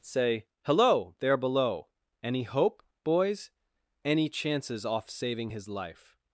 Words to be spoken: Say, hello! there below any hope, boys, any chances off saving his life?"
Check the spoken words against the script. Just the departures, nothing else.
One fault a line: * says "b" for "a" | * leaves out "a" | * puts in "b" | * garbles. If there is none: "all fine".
all fine